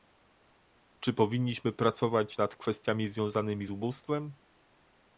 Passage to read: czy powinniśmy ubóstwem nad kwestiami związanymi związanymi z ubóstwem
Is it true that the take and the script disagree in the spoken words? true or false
true